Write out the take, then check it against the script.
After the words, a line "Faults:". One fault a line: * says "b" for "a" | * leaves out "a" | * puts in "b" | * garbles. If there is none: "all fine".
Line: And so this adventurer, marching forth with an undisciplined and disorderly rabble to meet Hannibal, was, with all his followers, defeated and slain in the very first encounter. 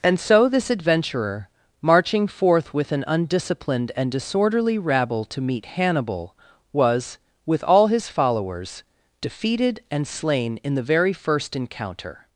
And so this adventurer, marching forth with an undisciplined and disorderly rabble to meet Hannibal, was, with all his followers, defeated and slain in the very first encounter.
Faults:
all fine